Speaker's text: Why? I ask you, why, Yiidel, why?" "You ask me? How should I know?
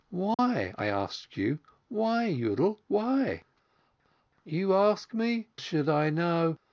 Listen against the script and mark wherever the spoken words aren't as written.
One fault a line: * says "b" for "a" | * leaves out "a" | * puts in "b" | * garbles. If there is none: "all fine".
* leaves out "How"